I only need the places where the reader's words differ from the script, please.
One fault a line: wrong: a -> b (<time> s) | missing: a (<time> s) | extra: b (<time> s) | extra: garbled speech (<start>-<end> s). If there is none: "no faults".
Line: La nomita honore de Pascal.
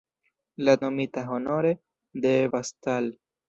no faults